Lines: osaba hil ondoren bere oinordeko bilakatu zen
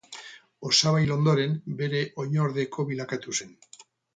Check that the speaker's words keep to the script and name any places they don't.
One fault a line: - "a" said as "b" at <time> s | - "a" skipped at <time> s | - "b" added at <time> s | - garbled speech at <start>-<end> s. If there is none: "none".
none